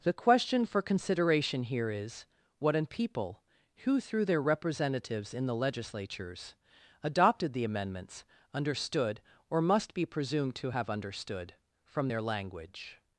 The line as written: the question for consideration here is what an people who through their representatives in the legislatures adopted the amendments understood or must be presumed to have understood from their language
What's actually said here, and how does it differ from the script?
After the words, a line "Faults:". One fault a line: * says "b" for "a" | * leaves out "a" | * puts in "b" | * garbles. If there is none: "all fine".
the question for consideration here is what an people who through their representatives in the legislatures adopted the amendments understood or must be presumed to have understood from their language
Faults:
all fine